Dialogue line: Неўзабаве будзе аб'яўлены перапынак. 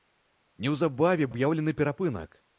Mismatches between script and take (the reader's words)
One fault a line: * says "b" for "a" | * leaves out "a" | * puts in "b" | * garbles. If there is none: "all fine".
* leaves out "будзе"